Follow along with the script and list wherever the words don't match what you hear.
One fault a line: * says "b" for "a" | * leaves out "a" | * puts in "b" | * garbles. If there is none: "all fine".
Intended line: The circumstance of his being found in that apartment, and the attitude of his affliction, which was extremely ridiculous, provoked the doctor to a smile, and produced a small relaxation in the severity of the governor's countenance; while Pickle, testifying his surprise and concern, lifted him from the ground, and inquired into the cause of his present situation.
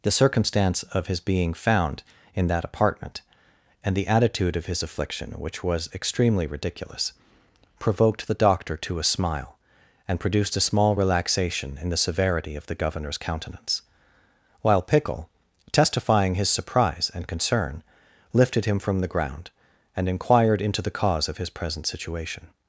all fine